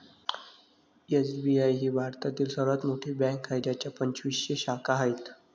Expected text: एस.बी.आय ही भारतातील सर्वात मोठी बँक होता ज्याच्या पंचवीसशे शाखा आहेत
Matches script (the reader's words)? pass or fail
fail